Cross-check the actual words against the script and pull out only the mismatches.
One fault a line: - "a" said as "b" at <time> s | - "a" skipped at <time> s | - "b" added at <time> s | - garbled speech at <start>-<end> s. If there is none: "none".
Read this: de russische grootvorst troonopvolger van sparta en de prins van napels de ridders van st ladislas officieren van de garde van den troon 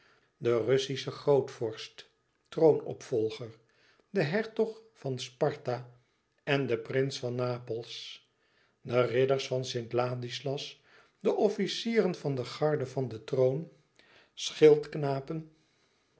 - "de hertog" added at 4.1 s
- "de" added at 11.2 s